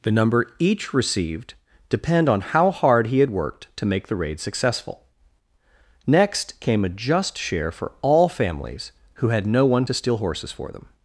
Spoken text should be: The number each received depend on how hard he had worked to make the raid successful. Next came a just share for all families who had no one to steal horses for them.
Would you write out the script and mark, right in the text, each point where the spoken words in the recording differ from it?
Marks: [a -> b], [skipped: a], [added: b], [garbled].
The number each received depend on how hard he had worked to make the raid successful. Next came a just share for all families who had no one to steal horses for them.